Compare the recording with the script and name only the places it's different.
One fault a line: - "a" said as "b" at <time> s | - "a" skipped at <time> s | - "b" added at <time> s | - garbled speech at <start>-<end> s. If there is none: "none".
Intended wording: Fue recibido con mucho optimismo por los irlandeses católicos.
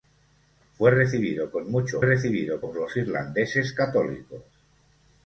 - "optimismo" said as "recibido" at 2.0 s